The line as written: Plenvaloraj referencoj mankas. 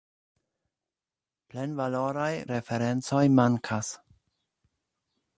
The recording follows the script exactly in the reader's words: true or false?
true